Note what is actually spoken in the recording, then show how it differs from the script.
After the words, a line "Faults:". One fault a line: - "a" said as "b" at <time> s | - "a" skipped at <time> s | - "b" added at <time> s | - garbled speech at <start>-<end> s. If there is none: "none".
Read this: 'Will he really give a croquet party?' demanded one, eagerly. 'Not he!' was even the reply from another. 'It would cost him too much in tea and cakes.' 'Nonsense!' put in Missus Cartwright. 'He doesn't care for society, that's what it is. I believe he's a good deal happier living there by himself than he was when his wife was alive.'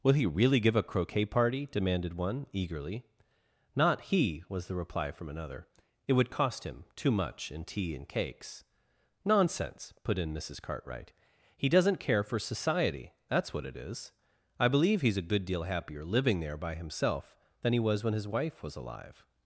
'Will he really give a croquet party?' demanded one, eagerly. 'Not he!' was the reply from another. 'It would cost him too much in tea and cakes.' 'Nonsense!' put in Missus Cartwright. 'He doesn't care for society, that's what it is. I believe he's a good deal happier living there by himself than he was when his wife was alive.'
Faults:
- "even" skipped at 4.7 s